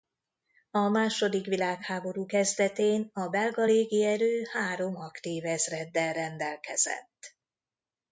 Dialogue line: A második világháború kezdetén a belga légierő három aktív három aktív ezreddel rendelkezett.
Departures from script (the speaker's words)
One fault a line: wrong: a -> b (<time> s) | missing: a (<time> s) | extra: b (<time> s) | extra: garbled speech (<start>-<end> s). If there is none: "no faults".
missing: három aktív (5.5 s)